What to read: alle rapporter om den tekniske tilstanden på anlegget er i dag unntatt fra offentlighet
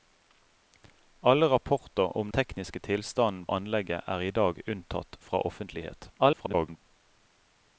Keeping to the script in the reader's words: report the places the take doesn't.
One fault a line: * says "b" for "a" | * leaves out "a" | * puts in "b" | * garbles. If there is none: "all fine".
* leaves out "den"
* leaves out "på"
* garbles